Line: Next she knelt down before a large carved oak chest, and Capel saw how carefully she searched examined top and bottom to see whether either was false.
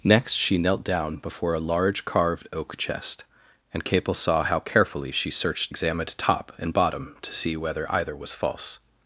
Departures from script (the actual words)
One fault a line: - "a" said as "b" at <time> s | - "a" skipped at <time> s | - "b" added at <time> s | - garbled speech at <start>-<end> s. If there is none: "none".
none